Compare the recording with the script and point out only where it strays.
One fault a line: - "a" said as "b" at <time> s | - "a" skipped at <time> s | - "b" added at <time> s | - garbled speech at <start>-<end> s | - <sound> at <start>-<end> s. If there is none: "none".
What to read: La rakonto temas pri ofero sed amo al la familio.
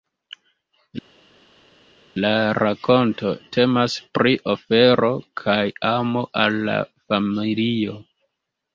- "sed" said as "kaj" at 5.4 s